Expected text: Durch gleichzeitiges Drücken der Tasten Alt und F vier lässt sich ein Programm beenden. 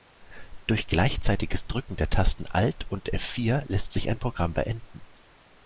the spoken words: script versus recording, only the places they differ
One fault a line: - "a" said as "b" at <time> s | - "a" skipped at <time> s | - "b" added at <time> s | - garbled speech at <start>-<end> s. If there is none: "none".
none